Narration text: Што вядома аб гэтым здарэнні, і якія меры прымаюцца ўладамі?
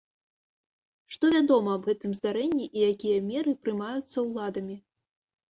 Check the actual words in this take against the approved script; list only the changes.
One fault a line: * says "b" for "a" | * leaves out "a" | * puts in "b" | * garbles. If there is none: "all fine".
all fine